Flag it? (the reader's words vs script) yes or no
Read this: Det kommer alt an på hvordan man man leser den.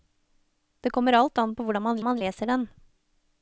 no